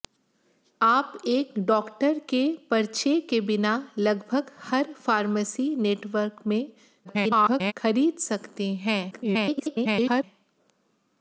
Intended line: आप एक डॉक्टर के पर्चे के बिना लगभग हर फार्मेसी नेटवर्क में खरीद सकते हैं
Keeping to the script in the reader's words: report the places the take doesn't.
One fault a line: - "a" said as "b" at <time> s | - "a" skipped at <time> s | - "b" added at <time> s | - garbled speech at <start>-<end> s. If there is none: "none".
- garbled speech at 7.0-7.7 s
- garbled speech at 9.1-10.2 s